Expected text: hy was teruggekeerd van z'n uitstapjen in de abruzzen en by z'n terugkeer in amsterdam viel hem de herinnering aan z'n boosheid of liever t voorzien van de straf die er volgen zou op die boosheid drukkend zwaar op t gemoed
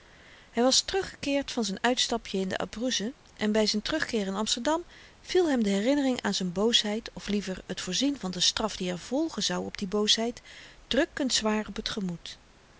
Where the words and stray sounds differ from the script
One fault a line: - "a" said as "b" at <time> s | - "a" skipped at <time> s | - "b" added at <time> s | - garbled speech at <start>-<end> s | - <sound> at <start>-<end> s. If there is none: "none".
none